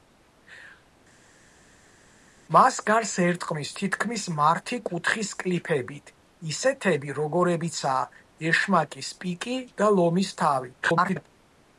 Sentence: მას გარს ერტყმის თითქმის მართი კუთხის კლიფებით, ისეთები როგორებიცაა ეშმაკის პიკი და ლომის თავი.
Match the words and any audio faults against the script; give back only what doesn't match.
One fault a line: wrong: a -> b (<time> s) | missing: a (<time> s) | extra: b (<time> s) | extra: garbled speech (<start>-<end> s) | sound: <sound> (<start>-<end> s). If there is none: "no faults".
extra: garbled speech (10.8-11.3 s)